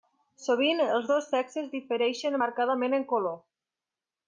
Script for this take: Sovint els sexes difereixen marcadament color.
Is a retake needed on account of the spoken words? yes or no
yes